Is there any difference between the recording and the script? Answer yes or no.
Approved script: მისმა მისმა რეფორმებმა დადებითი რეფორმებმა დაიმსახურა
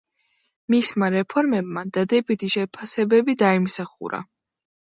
yes